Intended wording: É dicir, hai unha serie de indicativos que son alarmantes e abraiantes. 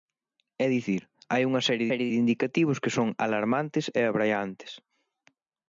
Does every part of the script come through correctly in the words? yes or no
no